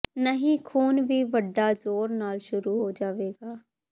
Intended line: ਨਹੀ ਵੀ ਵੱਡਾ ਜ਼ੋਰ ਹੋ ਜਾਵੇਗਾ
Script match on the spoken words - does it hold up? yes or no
no